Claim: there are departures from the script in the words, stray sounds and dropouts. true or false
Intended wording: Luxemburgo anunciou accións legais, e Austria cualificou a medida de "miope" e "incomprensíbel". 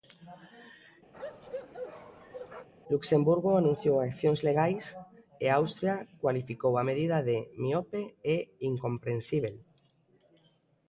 true